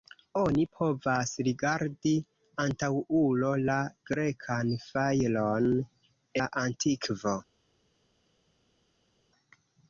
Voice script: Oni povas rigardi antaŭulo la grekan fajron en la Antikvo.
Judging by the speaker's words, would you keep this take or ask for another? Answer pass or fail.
fail